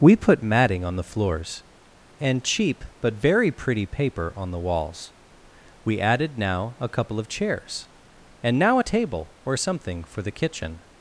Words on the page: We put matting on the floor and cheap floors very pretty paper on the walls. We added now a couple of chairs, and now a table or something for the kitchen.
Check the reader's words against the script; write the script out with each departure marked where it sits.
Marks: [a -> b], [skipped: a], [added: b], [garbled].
We put matting on the [floor -> floors] and cheap [floors -> but] very pretty paper on the walls. We added now a couple of chairs, and now a table or something for the kitchen.